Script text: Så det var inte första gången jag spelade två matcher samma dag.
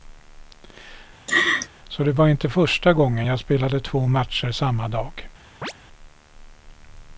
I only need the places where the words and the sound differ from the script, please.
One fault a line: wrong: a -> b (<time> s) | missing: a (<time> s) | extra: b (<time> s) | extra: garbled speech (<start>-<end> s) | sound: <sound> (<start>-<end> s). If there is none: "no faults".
sound: laugh (1.3-1.7 s)
sound: chirp (5.6-5.7 s)